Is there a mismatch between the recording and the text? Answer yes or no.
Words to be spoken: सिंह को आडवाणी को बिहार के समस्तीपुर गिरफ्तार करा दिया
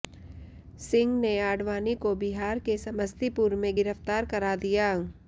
yes